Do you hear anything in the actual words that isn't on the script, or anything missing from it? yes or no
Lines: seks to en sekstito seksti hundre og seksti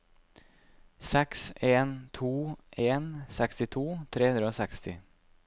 yes